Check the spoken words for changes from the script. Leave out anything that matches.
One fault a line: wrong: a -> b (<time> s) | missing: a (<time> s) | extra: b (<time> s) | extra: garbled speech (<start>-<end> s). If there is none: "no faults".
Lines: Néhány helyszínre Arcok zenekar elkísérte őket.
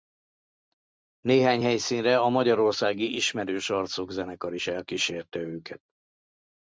extra: a magyarországi Ismerős (2.2 s)
extra: is (4.5 s)